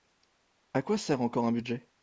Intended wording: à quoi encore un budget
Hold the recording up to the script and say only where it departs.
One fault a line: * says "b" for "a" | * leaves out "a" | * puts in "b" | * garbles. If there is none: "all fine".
* puts in "sert"